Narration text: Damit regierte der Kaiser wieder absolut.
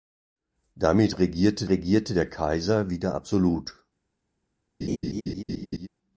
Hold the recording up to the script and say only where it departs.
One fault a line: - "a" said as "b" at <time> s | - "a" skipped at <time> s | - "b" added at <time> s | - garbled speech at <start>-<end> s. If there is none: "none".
- "regierte" added at 1.7 s